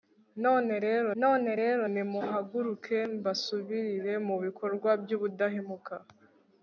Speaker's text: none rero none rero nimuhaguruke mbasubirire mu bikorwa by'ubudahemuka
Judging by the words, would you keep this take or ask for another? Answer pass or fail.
pass